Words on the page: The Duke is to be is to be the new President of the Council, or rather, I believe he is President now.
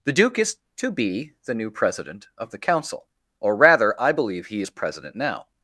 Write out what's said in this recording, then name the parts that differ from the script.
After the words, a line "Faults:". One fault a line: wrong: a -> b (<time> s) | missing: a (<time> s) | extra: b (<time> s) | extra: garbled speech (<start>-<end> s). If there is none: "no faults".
The Duke is to be the new President of the Council, or rather, I believe he is President now.
Faults:
missing: is to be (1.3 s)